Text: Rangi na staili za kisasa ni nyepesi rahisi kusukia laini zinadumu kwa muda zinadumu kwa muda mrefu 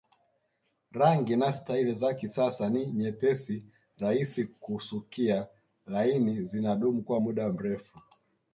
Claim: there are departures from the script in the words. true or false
true